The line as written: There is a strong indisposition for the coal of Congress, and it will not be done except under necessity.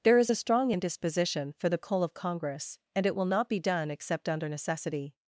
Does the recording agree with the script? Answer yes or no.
yes